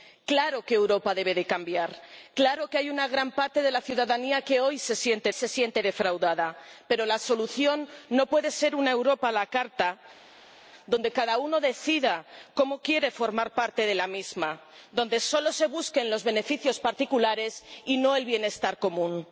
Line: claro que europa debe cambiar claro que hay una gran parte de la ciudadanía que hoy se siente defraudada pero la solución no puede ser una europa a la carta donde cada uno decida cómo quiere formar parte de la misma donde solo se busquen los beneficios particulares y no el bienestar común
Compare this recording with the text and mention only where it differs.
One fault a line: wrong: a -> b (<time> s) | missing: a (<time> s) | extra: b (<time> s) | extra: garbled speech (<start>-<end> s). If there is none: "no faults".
extra: se siente (5.3 s)